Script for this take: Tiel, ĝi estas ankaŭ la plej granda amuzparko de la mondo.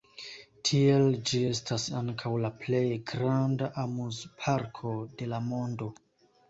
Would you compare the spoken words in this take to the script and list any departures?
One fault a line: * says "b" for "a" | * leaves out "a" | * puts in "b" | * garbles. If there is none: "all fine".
all fine